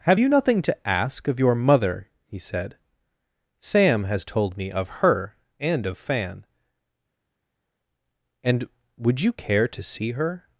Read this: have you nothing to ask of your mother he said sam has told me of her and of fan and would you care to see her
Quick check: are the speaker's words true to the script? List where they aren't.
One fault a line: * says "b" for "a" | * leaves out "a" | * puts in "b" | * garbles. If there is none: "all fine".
all fine